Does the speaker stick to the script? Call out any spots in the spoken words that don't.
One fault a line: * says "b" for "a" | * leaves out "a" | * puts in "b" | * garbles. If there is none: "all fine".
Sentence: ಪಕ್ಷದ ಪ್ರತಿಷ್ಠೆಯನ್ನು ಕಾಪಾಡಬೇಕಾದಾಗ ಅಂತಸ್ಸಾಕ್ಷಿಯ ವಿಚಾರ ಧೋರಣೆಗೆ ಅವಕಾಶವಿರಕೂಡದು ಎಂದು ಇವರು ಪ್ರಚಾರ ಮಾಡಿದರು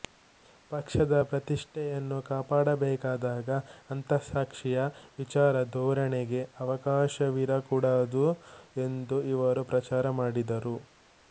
all fine